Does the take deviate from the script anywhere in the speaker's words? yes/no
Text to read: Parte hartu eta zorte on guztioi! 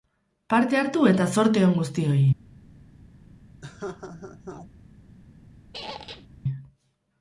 no